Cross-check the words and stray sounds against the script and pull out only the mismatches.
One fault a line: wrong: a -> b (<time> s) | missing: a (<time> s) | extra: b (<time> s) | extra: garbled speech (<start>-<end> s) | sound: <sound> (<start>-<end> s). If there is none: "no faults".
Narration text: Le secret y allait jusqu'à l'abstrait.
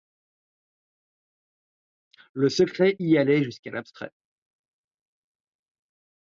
no faults